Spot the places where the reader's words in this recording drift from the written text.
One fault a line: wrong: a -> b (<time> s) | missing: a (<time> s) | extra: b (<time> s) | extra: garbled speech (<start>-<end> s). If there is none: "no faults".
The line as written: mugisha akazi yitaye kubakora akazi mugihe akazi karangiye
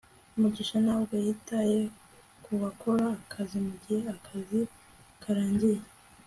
wrong: akazi -> ntabwo (0.8 s)